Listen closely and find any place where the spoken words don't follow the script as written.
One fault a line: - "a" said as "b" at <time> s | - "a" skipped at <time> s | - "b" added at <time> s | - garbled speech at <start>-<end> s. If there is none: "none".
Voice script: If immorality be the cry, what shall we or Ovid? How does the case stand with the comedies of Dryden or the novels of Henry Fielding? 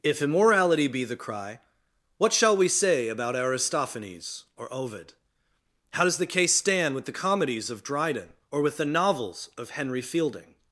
- "say about Aristophanes" added at 2.7 s
- "with" added at 8.6 s